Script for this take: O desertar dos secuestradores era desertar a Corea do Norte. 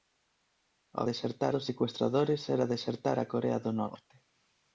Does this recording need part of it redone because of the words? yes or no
no